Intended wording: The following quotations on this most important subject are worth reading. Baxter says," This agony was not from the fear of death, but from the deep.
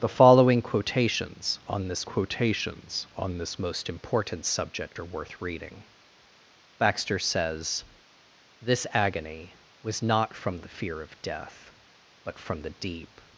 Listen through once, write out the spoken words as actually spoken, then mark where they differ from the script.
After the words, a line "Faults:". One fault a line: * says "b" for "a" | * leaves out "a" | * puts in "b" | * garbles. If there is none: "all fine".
The following quotations on this quotations on this most important subject are worth reading. Baxter says," This agony was not from the fear of death, but from the deep.
Faults:
* puts in "quotations on this"